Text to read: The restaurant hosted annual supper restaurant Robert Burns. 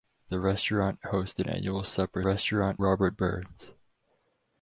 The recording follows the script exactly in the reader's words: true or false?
true